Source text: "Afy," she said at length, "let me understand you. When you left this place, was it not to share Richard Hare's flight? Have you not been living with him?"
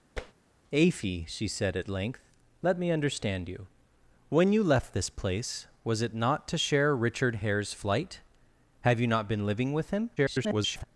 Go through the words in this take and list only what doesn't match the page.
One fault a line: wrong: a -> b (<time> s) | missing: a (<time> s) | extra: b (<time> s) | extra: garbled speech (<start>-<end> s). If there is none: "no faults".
extra: garbled speech (10.2-10.8 s)